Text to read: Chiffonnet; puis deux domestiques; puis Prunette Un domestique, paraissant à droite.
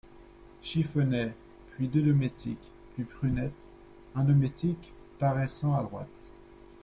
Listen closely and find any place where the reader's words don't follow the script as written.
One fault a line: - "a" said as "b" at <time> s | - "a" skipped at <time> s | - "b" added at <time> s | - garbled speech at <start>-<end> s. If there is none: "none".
none